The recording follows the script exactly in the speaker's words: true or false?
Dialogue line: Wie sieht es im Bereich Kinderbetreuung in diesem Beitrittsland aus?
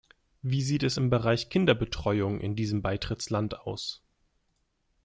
true